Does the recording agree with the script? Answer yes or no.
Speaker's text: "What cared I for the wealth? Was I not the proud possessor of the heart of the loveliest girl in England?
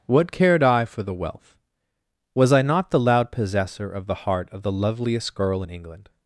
no